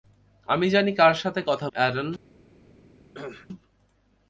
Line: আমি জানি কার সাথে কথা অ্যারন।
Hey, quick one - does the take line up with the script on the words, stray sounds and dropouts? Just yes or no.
no